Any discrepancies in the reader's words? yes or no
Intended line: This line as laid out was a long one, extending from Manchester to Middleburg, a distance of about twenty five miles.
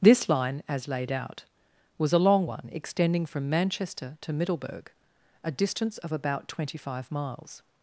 no